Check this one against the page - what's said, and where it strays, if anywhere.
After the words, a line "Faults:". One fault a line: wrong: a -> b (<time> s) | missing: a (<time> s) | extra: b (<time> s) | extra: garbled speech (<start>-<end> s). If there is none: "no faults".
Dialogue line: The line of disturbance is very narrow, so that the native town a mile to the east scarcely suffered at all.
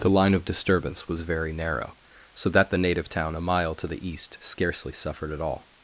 The line of disturbance was very narrow, so that the native town a mile to the east scarcely suffered at all.
Faults:
wrong: is -> was (1.1 s)